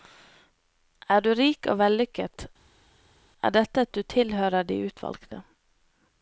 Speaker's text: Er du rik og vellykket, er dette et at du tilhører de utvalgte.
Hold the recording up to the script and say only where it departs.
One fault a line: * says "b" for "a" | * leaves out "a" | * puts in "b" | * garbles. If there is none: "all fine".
all fine